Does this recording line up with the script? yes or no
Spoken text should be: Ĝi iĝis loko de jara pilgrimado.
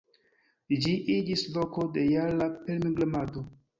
yes